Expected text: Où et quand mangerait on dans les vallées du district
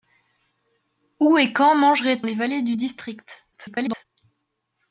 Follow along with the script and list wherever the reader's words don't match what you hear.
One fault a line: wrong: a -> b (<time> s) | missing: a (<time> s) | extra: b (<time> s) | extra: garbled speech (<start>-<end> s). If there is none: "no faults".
missing: on dans (2.2 s)
extra: garbled speech (3.5-4.1 s)